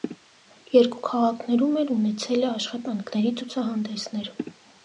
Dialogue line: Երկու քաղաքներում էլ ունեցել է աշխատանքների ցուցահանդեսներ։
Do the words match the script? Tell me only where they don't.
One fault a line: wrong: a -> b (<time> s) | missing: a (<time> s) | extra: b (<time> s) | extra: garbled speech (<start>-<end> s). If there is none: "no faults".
no faults